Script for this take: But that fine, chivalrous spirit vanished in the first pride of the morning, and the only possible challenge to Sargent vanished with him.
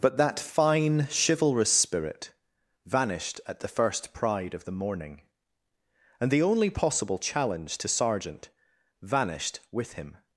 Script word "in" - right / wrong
wrong